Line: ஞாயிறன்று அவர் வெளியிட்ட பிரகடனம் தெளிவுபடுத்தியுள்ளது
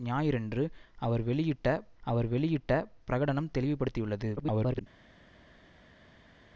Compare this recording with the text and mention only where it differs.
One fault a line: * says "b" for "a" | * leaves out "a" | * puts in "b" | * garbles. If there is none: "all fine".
* puts in "அவர் வெளியிட்ட"
* garbles